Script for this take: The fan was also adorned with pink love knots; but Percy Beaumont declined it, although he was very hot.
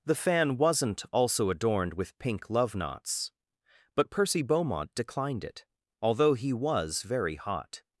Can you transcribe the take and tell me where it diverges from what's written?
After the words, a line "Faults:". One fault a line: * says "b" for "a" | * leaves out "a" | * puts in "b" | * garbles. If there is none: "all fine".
The fan wasn't also adorned with pink love knots; but Percy Beaumont declined it, although he was very hot.
Faults:
* says "wasn't" for "was"